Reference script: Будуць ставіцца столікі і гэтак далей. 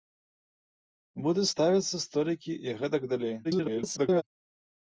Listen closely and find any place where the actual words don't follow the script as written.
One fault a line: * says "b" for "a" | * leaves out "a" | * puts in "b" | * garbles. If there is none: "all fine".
* garbles